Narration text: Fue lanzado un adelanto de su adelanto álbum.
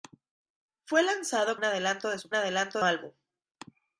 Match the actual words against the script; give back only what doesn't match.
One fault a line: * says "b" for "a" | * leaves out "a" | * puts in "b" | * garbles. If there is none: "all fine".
all fine